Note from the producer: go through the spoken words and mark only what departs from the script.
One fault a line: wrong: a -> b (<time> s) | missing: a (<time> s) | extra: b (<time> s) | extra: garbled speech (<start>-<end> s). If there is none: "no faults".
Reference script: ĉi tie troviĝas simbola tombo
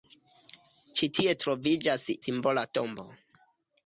no faults